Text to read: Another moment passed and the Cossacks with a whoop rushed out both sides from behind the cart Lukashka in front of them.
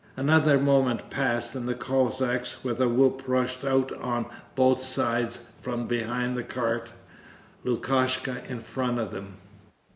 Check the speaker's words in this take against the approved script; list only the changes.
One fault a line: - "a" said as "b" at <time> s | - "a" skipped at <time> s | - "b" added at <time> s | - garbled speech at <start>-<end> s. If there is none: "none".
- "on" added at 4.0 s